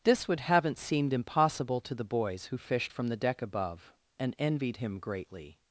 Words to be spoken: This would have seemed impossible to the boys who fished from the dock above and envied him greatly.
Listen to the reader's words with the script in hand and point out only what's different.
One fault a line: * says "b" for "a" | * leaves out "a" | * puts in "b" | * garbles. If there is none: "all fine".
* says "haven't" for "have"
* says "deck" for "dock"